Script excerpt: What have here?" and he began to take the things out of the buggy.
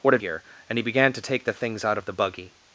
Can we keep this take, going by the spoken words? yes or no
yes